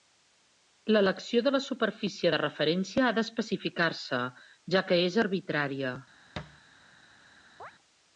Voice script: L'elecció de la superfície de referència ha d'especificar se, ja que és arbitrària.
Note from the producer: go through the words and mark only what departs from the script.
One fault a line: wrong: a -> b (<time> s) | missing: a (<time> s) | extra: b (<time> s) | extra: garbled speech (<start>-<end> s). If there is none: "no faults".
no faults